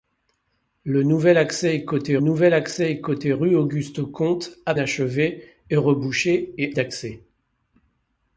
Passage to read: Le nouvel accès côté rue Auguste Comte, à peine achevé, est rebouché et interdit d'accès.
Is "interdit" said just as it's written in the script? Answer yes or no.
no